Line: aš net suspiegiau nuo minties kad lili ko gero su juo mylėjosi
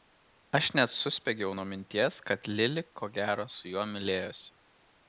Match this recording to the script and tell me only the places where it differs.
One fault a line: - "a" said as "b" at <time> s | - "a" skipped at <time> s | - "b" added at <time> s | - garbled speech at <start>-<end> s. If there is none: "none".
none